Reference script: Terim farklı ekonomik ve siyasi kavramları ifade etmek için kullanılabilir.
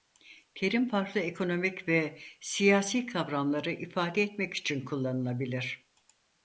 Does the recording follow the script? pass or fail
pass